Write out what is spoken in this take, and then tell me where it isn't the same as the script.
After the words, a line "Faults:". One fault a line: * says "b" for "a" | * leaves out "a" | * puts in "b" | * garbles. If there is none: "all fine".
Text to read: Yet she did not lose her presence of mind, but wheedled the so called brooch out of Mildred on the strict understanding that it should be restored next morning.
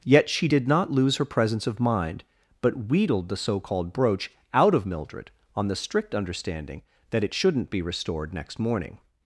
Yet she did not lose her presence of mind, but wheedled the so called brooch out of Mildred on the strict understanding that it shouldn't be restored next morning.
Faults:
* says "shouldn't" for "should"